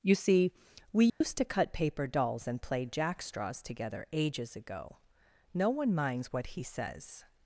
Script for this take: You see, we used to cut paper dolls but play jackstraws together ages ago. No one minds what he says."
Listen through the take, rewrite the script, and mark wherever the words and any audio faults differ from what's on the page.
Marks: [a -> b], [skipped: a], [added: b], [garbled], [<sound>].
You see, we used [dropout] to cut paper dolls [but -> and] play jackstraws together ages ago. No one minds what he says."